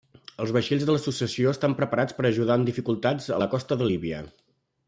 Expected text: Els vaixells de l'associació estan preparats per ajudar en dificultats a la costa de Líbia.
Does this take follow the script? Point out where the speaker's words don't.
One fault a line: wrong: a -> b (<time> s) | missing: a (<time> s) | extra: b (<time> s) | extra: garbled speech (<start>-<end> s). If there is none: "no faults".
no faults